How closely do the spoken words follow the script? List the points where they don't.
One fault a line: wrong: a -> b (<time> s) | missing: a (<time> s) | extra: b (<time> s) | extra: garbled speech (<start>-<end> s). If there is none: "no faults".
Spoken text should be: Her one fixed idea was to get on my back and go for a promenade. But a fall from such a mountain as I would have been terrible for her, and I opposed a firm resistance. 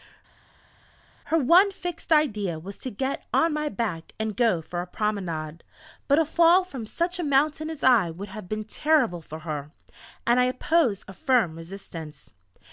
no faults